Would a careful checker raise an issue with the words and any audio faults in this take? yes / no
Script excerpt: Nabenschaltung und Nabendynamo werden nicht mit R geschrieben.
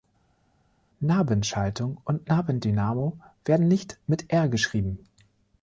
no